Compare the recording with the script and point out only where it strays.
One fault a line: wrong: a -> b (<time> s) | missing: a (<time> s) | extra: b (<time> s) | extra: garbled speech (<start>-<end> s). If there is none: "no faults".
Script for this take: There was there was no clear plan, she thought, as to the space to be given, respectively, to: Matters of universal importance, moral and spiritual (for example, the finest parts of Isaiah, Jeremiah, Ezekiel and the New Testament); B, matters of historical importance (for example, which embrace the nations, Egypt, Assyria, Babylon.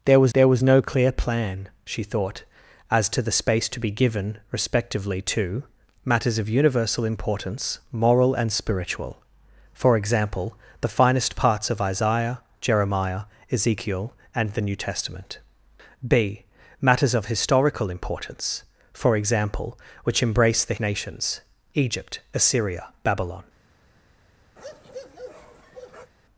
no faults